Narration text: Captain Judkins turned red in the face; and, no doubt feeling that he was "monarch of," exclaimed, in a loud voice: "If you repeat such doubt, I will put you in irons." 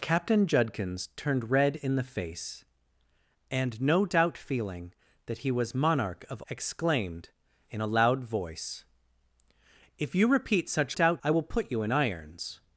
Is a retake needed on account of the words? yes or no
no